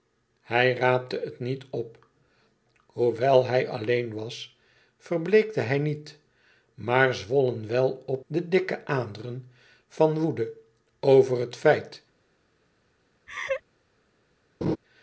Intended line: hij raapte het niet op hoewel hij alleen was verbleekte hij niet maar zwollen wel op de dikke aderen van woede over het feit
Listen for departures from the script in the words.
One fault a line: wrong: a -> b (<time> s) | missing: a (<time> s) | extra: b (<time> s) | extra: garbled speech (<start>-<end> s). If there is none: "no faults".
no faults